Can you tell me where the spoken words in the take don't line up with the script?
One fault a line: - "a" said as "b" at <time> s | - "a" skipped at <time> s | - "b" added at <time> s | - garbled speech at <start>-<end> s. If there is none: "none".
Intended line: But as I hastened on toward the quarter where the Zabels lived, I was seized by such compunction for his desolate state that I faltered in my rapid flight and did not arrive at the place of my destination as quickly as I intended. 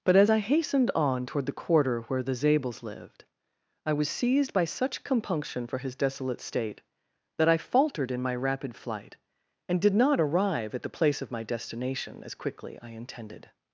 - "as" skipped at 12.8 s